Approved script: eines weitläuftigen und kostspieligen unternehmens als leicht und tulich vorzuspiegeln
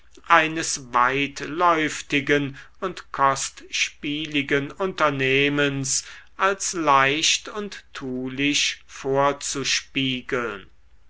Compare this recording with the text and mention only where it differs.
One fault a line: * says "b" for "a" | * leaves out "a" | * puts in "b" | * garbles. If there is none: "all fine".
all fine